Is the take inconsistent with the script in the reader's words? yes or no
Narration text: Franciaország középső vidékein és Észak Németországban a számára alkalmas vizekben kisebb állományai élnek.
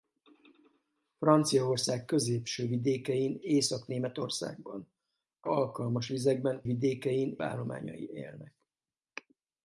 yes